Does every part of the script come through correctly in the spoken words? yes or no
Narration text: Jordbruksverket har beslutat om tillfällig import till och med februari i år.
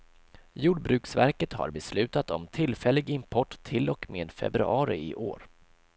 yes